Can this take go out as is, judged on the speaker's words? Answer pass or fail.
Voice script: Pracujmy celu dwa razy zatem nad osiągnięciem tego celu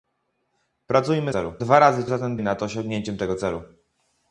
pass